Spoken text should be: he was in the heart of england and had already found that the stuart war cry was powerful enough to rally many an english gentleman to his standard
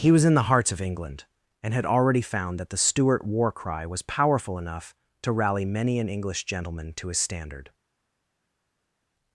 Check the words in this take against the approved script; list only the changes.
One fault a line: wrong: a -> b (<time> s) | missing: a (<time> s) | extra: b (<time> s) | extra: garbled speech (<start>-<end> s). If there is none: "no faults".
wrong: heart -> hearts (0.5 s)